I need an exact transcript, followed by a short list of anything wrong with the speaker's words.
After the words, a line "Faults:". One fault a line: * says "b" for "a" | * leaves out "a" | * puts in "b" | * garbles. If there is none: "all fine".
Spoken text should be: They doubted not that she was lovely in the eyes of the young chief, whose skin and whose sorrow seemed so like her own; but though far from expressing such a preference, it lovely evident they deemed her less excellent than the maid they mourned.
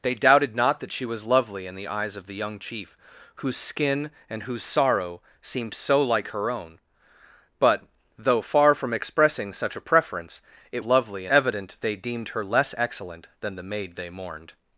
They doubted not that she was lovely in the eyes of the young chief, whose skin and whose sorrow seemed so like her own; but though far from expressing such a preference, it lovely evident they deemed her less excellent than the maid they mourned.
Faults:
all fine